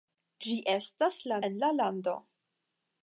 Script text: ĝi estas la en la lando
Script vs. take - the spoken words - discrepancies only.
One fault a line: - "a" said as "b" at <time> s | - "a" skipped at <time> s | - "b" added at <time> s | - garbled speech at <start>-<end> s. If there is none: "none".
none